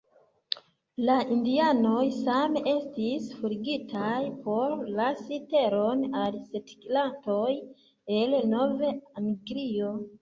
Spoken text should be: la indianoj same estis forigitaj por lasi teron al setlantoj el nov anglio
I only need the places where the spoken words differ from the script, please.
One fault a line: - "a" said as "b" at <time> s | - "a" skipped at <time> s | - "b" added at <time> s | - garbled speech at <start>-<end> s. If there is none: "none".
none